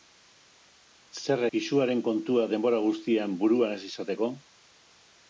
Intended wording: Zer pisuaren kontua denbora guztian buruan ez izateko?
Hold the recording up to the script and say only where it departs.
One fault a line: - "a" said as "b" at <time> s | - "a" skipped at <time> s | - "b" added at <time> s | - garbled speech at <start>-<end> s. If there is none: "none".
none